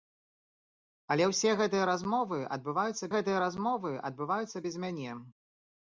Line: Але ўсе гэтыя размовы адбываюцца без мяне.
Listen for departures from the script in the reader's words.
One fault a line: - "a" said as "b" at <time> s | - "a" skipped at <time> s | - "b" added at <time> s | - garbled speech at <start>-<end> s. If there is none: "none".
- "гэтыя размовы адбываюцца" added at 3.2 s